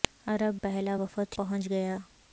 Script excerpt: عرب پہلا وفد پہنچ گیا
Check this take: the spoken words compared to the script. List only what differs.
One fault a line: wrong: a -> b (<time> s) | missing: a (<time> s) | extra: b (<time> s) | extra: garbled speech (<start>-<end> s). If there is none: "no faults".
no faults